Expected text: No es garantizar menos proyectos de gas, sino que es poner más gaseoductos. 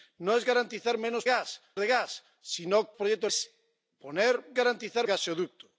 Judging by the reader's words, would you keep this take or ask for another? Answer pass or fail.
fail